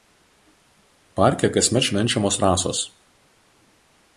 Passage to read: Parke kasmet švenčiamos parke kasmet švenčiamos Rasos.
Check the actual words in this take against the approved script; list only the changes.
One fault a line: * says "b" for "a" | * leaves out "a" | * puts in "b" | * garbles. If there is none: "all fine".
* leaves out "parke kasmet švenčiamos"